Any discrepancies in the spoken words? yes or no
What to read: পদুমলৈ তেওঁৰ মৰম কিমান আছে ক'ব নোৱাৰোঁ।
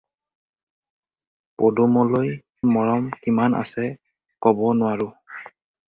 yes